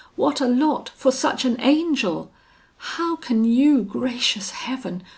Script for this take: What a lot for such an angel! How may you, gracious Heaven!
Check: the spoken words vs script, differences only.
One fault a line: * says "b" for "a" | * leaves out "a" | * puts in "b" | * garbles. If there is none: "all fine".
* says "can" for "may"